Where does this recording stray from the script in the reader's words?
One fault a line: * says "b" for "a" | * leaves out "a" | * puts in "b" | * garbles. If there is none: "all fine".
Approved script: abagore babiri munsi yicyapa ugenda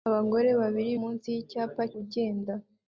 all fine